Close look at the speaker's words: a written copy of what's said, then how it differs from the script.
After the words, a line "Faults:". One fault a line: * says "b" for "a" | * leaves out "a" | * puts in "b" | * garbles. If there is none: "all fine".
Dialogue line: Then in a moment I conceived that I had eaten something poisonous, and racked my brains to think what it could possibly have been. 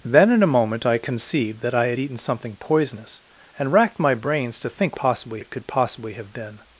Then in a moment I conceived that I had eaten something poisonous, and racked my brains to think possibly it could possibly have been.
Faults:
* says "possibly" for "what"